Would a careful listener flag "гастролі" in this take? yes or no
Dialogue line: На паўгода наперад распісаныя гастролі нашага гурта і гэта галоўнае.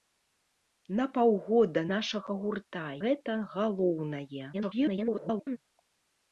yes